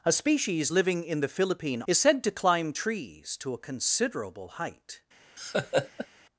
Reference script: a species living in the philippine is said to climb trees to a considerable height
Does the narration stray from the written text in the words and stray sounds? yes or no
yes